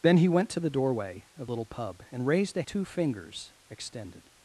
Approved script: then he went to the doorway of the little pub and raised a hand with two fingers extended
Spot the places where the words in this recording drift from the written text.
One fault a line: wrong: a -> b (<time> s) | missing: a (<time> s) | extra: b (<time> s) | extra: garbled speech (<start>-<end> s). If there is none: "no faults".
missing: the (1.5 s)
missing: hand with (2.6 s)